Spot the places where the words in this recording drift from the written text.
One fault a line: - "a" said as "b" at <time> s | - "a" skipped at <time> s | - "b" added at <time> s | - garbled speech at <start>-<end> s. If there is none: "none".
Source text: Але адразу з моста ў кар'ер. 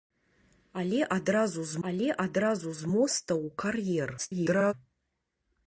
- "але адразу з" added at 1.9 s
- garbled speech at 4.2-4.7 s